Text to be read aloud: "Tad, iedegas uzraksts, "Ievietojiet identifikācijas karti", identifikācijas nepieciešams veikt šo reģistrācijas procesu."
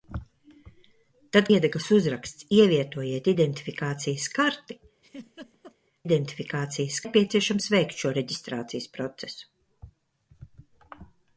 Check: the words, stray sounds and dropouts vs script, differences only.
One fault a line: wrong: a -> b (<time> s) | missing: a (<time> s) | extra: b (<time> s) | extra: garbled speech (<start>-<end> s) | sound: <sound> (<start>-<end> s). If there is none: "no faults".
sound: laugh (5.0-5.8 s)